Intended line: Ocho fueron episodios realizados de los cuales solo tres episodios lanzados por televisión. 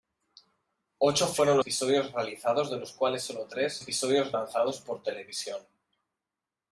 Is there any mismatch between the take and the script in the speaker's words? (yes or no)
no